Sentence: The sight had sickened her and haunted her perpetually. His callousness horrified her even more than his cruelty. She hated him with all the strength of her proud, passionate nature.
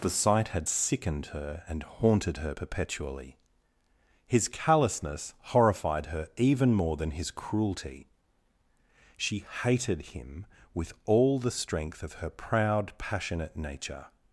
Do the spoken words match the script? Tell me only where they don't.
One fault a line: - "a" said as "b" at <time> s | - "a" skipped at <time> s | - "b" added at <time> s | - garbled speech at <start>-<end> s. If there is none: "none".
none